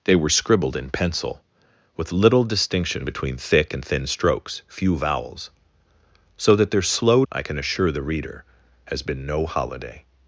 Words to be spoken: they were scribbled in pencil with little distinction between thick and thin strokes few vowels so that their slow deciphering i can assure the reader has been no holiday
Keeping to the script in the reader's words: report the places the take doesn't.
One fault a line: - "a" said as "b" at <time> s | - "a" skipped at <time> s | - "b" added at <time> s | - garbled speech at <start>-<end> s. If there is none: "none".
- "deciphering" skipped at 7.2 s